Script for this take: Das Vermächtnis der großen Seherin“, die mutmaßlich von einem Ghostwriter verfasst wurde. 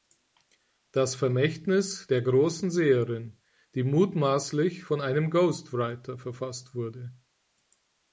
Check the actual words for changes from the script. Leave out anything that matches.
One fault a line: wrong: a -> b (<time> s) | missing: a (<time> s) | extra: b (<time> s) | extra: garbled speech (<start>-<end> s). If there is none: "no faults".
no faults